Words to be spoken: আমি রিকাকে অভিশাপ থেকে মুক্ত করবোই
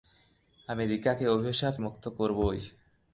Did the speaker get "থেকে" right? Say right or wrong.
wrong